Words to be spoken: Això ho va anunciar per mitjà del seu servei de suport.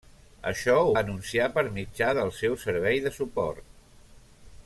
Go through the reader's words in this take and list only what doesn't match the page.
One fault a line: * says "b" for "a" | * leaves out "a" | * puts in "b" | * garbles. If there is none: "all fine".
* leaves out "va"